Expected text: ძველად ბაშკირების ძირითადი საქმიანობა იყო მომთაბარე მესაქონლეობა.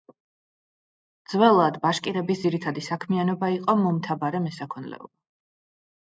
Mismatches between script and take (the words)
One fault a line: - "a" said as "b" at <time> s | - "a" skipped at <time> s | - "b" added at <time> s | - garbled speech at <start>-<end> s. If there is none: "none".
none